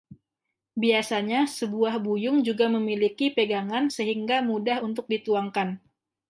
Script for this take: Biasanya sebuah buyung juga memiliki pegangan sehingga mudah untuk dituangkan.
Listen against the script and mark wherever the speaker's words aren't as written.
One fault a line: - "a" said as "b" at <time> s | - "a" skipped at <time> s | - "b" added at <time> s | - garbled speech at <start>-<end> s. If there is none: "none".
none